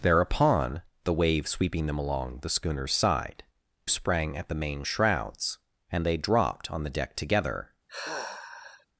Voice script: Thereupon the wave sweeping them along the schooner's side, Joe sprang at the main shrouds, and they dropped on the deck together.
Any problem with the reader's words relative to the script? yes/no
yes